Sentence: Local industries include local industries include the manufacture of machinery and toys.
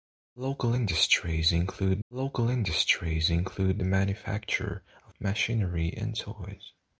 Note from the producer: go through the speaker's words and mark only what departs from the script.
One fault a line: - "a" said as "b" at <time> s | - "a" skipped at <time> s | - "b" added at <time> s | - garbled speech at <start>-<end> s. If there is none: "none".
none